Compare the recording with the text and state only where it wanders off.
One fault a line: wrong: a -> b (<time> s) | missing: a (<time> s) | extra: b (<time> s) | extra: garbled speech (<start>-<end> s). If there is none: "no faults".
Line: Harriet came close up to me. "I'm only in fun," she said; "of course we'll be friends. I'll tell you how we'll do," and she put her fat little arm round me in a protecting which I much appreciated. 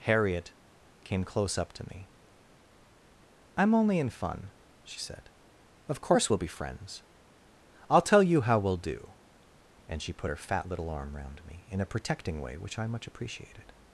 extra: way (12.4 s)